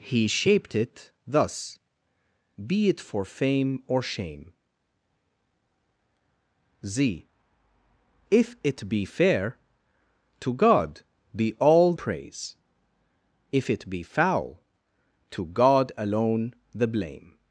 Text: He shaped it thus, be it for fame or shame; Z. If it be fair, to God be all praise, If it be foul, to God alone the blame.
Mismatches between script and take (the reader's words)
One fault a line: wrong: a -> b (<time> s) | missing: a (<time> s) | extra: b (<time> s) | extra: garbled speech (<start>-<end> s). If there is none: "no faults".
no faults